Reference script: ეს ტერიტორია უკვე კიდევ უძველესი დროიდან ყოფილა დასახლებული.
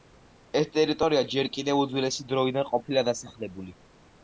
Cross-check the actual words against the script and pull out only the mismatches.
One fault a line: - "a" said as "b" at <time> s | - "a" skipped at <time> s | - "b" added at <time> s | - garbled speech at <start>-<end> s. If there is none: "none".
- "უკვე" said as "ჯერ" at 1.4 s